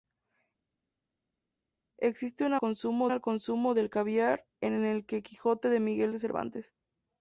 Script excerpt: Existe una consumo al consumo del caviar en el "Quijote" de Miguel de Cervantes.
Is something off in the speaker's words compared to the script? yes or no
no